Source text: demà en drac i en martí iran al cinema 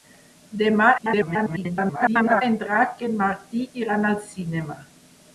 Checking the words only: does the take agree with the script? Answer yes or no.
no